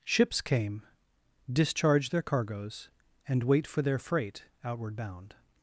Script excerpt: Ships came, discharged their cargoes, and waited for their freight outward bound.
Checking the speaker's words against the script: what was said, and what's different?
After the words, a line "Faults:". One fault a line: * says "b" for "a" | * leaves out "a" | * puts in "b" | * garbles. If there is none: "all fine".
Ships came, discharged their cargoes, and wait for their freight outward bound.
Faults:
* says "wait" for "waited"